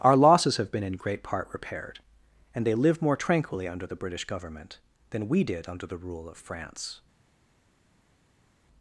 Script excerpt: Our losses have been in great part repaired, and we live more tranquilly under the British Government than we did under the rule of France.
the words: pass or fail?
fail